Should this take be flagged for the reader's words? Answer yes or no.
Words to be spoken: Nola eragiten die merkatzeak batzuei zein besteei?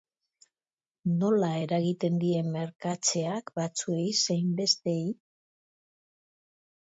no